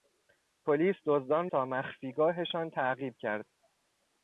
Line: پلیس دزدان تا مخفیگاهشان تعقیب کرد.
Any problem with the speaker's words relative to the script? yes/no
no